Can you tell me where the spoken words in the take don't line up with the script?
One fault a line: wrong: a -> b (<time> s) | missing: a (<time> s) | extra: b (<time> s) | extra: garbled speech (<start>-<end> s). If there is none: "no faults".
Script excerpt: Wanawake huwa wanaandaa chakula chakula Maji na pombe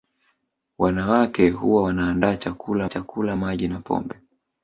no faults